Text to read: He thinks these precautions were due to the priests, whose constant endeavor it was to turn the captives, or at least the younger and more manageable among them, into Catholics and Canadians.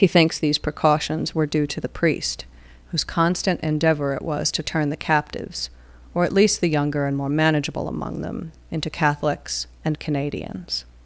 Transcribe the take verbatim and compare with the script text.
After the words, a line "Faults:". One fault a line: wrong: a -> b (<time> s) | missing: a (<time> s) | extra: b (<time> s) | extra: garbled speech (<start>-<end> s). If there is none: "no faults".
He thinks these precautions were due to the priest, whose constant endeavor it was to turn the captives, or at least the younger and more manageable among them, into Catholics and Canadians.
Faults:
wrong: priests -> priest (1.9 s)